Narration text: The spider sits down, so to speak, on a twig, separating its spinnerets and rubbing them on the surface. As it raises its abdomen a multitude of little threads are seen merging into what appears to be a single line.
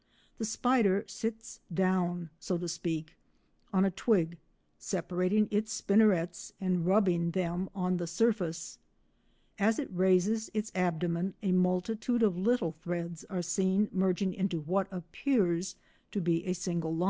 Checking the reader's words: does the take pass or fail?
pass